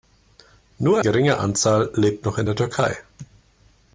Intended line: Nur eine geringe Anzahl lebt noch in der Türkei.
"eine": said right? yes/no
no